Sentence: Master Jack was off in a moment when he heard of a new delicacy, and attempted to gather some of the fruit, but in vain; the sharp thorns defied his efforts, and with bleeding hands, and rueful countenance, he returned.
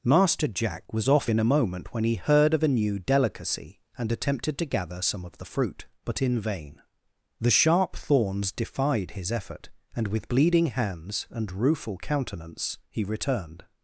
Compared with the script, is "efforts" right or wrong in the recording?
wrong